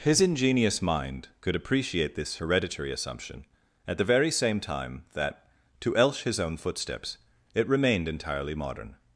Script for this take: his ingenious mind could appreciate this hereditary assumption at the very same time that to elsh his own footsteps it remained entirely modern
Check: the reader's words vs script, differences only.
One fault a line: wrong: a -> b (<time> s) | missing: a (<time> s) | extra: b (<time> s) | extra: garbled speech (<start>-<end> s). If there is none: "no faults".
no faults